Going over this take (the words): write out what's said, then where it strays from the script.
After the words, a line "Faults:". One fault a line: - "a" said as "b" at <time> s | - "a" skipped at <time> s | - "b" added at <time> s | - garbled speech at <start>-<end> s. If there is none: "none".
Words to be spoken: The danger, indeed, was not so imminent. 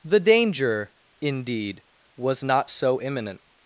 The danger, indeed, was not so imminent.
Faults:
none